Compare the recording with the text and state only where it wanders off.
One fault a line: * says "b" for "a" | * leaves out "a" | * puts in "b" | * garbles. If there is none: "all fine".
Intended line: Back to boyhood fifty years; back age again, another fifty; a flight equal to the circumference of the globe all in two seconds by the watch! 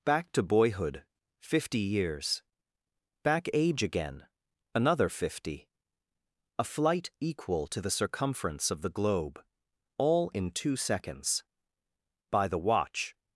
all fine